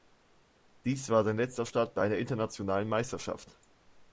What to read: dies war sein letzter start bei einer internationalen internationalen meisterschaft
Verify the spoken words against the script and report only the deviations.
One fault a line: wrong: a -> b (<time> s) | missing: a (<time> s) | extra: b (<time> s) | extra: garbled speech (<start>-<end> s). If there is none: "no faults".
missing: internationalen (2.9 s)